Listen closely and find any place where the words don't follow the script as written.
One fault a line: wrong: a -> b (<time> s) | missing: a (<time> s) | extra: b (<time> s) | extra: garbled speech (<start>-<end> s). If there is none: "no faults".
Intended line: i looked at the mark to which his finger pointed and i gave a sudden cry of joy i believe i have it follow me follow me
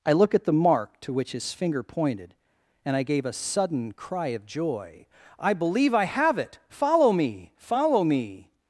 wrong: looked -> look (0.1 s)